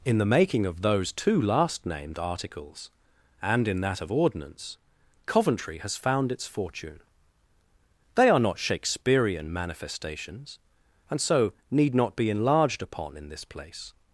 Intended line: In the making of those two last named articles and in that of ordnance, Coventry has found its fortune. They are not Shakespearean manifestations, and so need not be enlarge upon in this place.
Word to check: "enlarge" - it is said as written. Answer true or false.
false